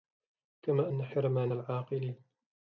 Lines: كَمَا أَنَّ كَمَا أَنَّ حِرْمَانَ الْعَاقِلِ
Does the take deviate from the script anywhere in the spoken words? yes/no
yes